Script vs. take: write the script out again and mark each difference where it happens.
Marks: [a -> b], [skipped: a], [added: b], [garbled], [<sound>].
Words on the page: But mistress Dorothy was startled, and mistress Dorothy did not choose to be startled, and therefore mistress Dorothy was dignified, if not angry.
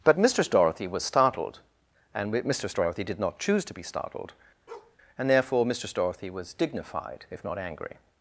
But mistress Dorothy was startled, and mistress Dorothy did not choose to be startled, [bark] and therefore mistress Dorothy was dignified, if not angry.